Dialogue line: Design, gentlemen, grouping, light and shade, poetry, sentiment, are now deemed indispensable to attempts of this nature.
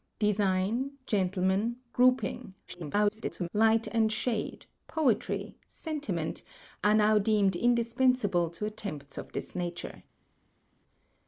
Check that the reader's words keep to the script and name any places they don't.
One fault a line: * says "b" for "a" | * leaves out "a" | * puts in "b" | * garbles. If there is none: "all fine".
* garbles